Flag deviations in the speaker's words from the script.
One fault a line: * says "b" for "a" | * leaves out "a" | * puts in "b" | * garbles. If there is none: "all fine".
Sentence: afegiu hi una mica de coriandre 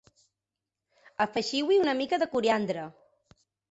all fine